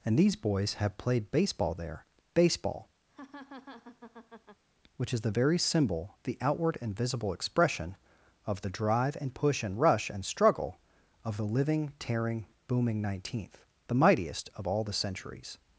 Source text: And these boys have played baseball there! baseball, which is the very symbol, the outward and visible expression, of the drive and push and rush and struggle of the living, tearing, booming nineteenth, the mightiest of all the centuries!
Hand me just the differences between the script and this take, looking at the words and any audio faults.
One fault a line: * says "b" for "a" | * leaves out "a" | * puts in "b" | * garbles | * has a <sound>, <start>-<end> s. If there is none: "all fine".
* has a laugh, 3.1-4.6 s